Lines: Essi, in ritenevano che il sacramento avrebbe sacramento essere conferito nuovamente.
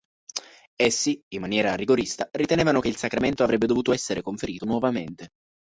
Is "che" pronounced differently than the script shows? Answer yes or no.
no